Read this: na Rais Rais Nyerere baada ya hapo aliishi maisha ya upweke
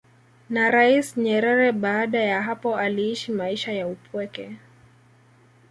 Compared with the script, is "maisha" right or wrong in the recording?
right